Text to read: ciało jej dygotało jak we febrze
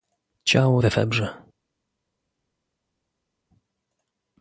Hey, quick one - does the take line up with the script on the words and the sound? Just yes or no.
no